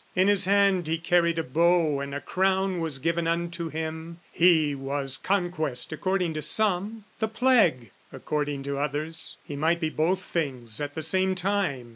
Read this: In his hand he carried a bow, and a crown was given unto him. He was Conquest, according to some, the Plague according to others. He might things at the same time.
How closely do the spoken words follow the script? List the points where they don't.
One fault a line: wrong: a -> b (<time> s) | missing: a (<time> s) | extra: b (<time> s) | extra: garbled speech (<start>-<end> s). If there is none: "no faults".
extra: be both (9.8 s)